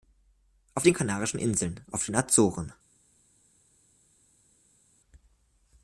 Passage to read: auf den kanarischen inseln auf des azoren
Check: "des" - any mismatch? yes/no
yes